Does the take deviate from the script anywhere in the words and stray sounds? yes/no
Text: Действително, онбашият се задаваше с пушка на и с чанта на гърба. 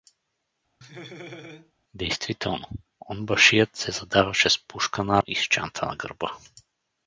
yes